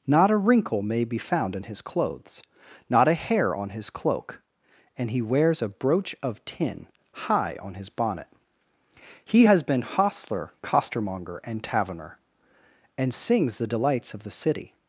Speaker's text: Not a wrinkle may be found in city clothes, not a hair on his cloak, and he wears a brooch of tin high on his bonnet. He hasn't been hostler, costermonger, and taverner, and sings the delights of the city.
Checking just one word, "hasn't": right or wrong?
wrong